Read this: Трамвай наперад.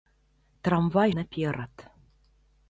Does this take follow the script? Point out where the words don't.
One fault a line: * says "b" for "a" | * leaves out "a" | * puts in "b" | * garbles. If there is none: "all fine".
all fine